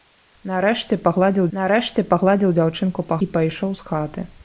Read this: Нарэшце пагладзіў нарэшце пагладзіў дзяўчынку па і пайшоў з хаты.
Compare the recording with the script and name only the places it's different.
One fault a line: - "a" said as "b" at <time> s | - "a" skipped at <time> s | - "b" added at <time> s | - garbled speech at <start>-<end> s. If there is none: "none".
none